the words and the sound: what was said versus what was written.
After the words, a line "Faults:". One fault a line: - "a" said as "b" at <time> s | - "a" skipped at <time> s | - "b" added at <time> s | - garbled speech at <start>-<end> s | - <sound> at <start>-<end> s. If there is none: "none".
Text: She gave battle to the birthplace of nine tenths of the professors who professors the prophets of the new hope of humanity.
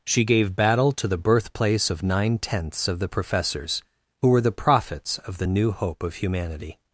She gave battle to the birthplace of nine tenths of the professors who were the prophets of the new hope of humanity.
Faults:
- "professors" said as "were" at 4.3 s